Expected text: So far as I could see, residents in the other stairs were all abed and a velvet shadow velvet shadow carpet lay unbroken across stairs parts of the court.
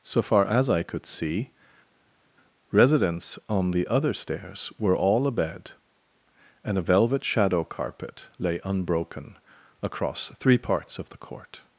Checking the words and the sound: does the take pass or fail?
fail